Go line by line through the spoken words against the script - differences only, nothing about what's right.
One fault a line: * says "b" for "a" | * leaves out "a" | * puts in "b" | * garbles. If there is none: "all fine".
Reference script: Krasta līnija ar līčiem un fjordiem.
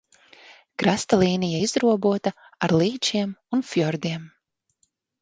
* puts in "izrobota"